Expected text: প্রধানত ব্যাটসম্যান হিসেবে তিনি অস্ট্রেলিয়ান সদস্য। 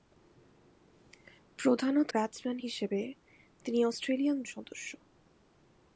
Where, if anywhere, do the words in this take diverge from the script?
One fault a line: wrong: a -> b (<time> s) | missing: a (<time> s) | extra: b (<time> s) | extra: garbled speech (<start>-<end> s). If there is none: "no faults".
no faults